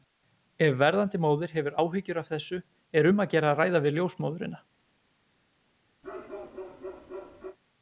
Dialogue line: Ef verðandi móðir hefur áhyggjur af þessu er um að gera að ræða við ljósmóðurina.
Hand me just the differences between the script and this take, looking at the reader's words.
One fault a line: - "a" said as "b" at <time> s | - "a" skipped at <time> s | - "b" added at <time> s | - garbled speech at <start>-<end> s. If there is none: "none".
none